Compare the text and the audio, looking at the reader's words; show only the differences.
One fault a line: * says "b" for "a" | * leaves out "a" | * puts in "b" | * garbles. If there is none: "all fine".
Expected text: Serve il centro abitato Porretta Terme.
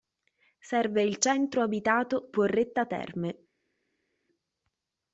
all fine